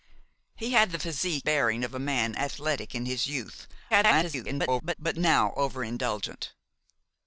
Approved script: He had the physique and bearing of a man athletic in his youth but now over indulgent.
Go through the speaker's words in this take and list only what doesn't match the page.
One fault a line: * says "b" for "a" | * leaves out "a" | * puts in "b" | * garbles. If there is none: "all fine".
* leaves out "and"
* garbles